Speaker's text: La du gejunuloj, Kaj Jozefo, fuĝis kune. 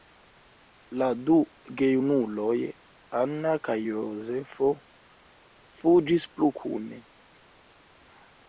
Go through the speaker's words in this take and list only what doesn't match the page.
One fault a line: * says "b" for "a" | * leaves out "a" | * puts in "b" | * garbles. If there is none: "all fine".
* puts in "Anna"
* puts in "plu"